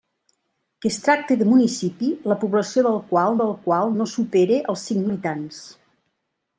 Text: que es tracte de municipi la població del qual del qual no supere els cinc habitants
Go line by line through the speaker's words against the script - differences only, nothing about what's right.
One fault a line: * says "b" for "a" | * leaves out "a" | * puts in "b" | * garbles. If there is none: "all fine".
all fine